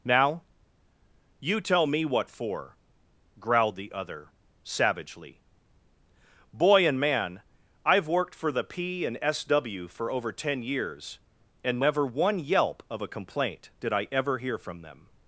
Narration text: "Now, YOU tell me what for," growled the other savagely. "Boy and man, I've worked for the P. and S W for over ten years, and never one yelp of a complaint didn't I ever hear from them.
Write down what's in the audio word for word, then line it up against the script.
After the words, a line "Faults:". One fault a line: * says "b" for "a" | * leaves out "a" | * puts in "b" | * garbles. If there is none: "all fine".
"Now, YOU tell me what for," growled the other savagely. "Boy and man, I've worked for the P. and S W for over ten years, and never one yelp of a complaint did I ever hear from them.
Faults:
* says "did" for "didn't"